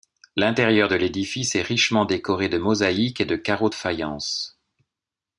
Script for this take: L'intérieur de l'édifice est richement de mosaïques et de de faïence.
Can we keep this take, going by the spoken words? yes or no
no